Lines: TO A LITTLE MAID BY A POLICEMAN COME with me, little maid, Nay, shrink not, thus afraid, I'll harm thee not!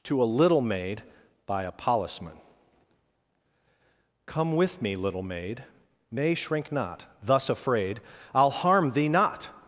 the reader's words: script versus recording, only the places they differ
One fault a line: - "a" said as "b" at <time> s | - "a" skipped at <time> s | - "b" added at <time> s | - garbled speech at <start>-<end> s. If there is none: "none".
none